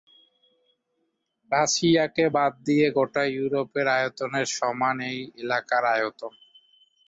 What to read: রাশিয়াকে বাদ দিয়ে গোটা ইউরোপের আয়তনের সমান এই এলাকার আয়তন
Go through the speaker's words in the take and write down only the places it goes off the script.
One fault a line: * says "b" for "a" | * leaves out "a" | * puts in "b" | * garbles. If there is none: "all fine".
all fine